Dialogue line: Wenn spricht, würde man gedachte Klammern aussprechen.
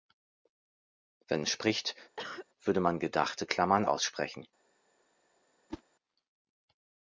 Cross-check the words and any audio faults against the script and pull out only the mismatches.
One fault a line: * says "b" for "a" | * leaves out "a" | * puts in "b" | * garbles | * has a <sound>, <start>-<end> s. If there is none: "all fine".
* has a cough, 2.2-2.5 s
* has a whoosh, 5.7-5.8 s